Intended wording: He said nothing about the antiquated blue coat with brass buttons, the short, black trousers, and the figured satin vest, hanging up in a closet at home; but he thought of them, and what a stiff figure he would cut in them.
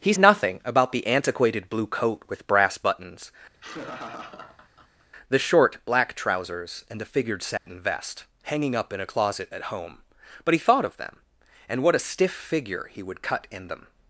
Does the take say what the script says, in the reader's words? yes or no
no